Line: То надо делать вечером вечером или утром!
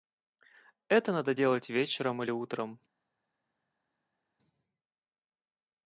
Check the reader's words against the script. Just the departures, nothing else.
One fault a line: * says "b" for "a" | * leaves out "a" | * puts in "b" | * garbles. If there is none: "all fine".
* says "Это" for "То"
* leaves out "вечером"